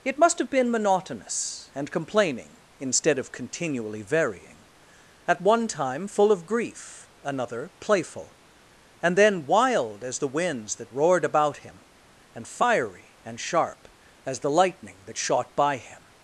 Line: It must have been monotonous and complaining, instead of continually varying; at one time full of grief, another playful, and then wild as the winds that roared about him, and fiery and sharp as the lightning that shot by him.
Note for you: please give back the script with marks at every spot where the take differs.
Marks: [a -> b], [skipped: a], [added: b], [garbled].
It must have been monotonous and complaining, instead of continually varying; at one time full of grief, another playful, and then wild as the winds that roared about him, and fiery and sharp as the lightning that shot by him.